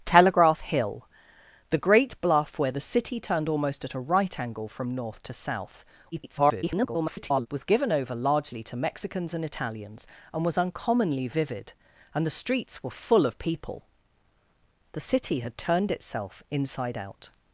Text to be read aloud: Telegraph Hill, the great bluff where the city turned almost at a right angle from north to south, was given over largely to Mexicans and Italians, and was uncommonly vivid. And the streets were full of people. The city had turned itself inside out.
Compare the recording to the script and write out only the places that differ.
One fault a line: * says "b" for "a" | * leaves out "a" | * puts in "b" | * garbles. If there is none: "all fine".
* garbles